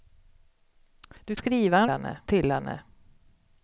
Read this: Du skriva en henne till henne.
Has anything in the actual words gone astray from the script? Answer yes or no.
no